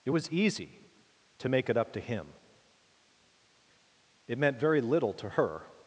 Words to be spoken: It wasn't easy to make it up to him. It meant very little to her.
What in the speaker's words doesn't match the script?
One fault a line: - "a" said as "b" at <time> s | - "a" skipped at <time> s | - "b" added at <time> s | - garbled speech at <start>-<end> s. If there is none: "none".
- "wasn't" said as "was" at 0.1 s